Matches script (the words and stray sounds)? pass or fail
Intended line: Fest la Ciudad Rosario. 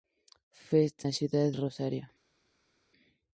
pass